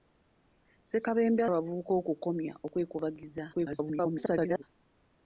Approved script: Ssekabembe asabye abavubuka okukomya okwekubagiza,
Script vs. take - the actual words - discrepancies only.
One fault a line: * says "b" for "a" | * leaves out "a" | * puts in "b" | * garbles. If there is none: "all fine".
* leaves out "asabye"
* garbles